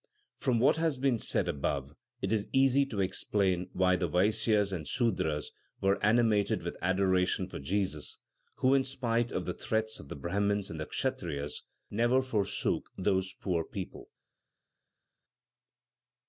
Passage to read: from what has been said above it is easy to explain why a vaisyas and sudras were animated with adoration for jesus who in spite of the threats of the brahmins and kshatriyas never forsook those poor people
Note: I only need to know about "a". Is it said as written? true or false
false